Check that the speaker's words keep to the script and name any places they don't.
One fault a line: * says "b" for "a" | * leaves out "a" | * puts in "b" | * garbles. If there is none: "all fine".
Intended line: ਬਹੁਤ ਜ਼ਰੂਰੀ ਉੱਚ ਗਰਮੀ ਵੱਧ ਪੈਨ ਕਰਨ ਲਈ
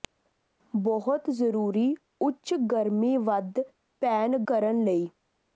all fine